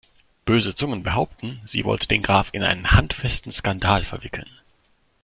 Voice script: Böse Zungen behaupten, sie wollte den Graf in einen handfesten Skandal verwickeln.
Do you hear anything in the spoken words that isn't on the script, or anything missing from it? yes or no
no